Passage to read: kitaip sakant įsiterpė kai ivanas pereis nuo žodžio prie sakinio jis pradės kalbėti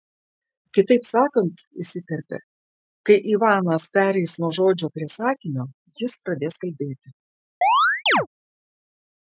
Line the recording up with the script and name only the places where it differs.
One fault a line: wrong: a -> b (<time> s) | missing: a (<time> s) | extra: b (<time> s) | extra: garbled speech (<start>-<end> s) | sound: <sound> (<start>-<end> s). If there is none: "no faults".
sound: chirp (7.6-8.3 s)